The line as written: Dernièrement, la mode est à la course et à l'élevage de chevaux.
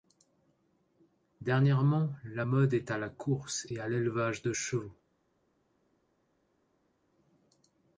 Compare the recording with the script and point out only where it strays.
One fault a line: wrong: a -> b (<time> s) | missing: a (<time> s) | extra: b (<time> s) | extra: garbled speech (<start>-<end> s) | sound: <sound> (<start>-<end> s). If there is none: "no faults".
no faults